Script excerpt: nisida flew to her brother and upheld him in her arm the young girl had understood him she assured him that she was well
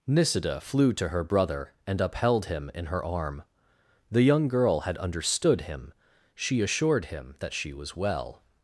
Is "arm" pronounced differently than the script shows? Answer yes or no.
no